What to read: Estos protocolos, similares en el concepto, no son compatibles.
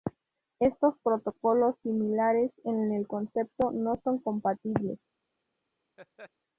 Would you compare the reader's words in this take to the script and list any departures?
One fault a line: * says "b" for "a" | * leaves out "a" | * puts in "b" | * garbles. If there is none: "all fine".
all fine